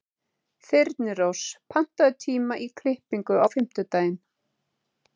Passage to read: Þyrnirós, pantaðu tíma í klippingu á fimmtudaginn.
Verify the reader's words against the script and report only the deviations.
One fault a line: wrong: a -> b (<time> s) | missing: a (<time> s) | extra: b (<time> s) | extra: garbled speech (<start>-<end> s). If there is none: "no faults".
no faults